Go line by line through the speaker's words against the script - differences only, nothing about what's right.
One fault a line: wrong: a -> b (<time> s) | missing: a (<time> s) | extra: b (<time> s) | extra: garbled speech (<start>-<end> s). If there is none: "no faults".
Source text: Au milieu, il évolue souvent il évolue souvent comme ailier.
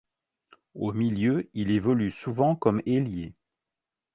missing: il évolue souvent (2.5 s)